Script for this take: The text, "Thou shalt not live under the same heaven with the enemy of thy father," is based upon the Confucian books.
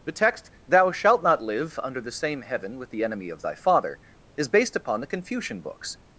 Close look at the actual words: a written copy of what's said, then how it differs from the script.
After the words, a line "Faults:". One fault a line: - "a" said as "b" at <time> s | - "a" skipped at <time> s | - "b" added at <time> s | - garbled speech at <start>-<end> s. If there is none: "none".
The text, "Thou shalt not live under the same heaven with the enemy of thy father," is based upon the Confucian books.
Faults:
none